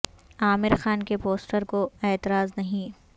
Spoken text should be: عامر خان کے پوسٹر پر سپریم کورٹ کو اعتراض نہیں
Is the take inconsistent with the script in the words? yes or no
yes